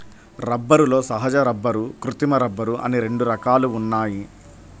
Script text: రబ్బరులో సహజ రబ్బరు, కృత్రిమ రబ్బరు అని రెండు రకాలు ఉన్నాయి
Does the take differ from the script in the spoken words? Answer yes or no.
no